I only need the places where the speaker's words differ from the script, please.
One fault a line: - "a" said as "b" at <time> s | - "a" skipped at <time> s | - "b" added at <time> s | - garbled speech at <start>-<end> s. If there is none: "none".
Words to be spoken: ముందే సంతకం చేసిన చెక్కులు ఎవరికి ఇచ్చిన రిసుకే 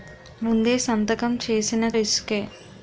- "చెక్కులు ఎవరికి ఇచ్చిన" skipped at 1.8 s